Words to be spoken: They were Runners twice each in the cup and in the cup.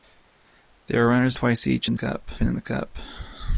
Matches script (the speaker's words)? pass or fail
pass